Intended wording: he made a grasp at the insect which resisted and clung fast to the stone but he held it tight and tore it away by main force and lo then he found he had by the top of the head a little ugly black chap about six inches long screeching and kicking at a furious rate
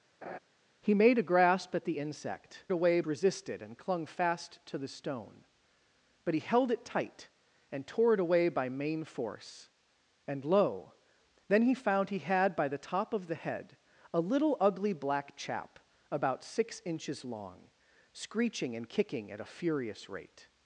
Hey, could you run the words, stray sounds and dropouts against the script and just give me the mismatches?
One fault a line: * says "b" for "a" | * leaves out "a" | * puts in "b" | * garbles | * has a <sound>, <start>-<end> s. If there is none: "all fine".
* has a laugh, 0.2-0.4 s
* says "away" for "which"